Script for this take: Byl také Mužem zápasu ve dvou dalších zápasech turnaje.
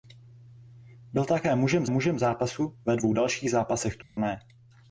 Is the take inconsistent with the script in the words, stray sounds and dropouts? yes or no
yes